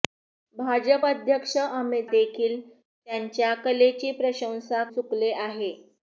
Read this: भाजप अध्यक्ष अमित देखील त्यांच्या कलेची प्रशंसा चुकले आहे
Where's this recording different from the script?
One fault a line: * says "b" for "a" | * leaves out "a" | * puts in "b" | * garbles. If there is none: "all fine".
all fine